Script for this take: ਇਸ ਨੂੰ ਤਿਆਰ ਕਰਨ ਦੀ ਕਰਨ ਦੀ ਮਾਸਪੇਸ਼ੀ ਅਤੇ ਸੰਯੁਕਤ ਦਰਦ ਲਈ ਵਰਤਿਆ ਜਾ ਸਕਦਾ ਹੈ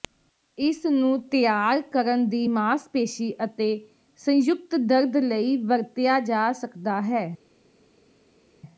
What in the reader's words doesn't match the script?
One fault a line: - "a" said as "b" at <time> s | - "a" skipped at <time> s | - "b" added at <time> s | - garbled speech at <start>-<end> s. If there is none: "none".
- "ਕਰਨ ਦੀ" skipped at 2.5 s